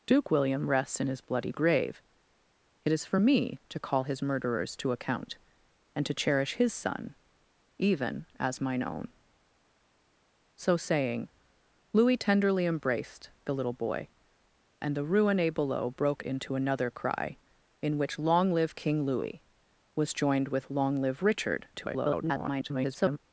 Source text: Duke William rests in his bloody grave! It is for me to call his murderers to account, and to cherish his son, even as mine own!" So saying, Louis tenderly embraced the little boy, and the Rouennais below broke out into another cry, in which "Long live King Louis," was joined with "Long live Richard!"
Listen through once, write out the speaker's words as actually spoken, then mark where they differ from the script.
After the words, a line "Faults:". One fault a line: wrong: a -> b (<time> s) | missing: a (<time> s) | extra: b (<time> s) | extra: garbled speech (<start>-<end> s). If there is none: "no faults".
Duke William rests in his bloody grave! It is for me to call his murderers to account, and to cherish his son, even as mine own!" So saying, Louis tenderly embraced the little boy, and the Rouennais below broke into another cry, in which "Long live King Louis," was joined with "Long live Richard!" [garbled]
Faults:
missing: out (16.2 s)
extra: garbled speech (21.7-23.2 s)